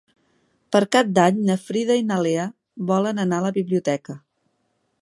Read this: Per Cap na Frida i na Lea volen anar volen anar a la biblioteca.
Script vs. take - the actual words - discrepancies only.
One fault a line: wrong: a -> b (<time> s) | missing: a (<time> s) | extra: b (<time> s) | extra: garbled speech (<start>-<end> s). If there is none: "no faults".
extra: d'Any (1.2 s)
missing: volen anar (3.4 s)